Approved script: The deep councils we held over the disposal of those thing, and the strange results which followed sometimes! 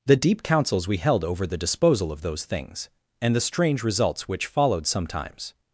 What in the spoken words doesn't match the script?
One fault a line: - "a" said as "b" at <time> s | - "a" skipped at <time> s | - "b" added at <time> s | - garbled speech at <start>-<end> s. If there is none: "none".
- "thing" said as "things" at 2.5 s